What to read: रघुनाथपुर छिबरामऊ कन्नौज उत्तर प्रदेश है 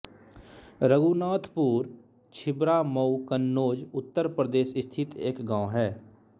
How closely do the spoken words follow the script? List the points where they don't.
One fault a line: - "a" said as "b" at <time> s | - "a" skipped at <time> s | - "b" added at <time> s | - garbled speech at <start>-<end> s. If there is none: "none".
- "स्थित एक गाँव" added at 4.8 s